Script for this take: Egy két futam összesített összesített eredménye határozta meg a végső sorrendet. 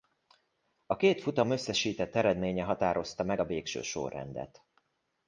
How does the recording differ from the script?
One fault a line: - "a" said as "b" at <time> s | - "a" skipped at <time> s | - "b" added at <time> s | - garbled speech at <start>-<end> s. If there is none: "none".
- "Egy" said as "A" at 0.8 s
- "összesített" skipped at 2.2 s